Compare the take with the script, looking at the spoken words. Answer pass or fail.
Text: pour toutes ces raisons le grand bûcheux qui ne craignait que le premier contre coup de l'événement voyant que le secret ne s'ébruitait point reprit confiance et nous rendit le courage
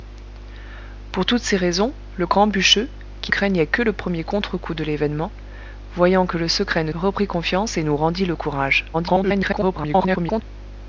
fail